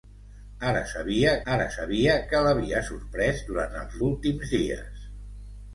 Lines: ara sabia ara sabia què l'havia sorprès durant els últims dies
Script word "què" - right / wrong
right